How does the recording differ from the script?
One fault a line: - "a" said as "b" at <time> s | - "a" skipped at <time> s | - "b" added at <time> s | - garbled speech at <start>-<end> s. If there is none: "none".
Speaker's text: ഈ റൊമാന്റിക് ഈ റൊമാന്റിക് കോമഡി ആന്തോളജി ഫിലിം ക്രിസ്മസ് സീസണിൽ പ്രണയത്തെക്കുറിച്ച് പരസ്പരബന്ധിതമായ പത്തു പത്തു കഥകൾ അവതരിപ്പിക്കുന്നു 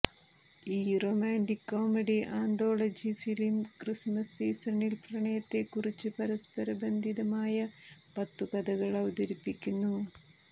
- "ഈ റൊമാന്റിക്" skipped at 1.7 s
- "പത്തു" skipped at 8.5 s